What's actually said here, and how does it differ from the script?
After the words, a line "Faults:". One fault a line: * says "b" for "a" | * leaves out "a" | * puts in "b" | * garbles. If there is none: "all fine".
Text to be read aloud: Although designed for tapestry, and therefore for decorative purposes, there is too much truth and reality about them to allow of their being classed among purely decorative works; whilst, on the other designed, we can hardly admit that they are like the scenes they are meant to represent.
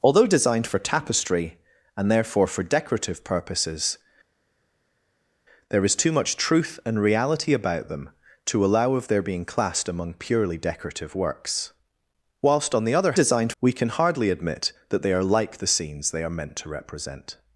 Although designed for tapestry, and therefore for decorative purposes, there is too much truth and reality about them to allow of their being classed among purely decorative works; whilst, on the other designed, we can hardly admit that they are like the scenes they are meant to represent.
Faults:
all fine